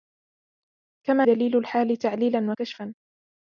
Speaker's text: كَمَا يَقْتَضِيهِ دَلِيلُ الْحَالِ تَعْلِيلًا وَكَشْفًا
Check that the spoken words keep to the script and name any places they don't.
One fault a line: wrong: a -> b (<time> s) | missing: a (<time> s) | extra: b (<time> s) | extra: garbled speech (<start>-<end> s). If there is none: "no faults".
missing: يَقْتَضِيهِ (1.2 s)